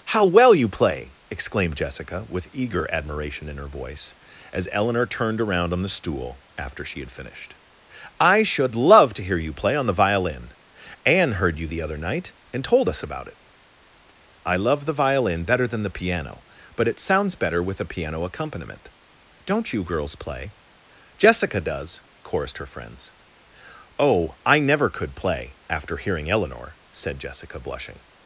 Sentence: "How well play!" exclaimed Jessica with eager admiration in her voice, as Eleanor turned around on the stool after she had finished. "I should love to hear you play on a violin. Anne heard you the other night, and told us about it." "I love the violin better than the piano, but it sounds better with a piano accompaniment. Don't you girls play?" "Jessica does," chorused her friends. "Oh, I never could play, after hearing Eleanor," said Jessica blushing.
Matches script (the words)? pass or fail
fail